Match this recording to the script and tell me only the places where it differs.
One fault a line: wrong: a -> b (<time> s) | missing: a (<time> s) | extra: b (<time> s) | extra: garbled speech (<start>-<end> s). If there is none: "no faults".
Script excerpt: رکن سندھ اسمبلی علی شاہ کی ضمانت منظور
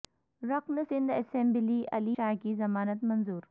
no faults